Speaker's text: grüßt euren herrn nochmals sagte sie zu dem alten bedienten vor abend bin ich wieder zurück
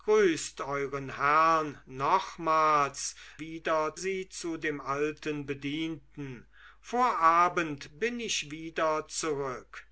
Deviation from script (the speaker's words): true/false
true